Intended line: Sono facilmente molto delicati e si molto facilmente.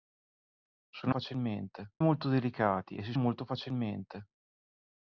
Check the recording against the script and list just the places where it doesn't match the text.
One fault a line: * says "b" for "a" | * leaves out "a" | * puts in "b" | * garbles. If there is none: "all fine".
all fine